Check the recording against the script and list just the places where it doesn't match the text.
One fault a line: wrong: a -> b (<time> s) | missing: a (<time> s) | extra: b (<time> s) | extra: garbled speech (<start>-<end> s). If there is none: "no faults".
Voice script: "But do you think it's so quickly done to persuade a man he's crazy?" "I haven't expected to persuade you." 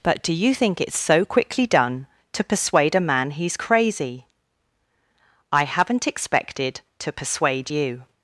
no faults